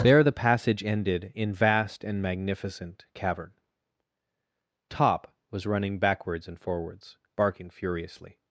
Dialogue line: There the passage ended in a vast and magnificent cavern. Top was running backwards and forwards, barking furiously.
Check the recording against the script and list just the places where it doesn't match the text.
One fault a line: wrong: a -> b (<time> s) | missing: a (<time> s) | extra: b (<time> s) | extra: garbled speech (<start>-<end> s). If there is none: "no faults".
missing: a (1.5 s)